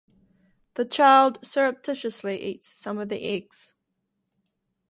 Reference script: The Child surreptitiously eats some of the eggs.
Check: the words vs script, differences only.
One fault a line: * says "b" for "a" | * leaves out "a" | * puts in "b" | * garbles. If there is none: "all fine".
all fine